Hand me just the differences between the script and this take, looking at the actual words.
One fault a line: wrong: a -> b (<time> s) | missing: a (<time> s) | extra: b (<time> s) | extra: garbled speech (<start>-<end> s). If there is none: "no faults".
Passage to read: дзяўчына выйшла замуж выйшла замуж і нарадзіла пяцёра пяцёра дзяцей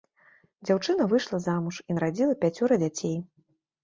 missing: выйшла замуж (1.8 s)
missing: пяцёра (2.8 s)